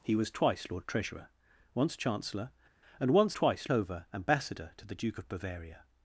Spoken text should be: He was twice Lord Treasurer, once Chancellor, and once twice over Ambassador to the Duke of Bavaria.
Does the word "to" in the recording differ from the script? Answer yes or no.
no